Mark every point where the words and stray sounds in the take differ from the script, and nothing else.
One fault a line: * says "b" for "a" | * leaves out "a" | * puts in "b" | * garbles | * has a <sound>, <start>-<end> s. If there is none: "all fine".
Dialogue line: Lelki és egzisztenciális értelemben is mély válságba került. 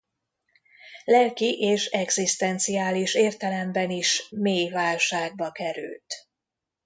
all fine